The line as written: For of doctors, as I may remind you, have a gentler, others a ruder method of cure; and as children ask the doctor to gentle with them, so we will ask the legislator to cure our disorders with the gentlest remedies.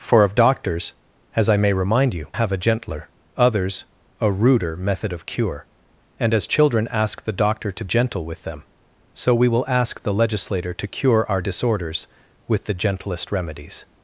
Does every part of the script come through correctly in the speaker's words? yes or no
yes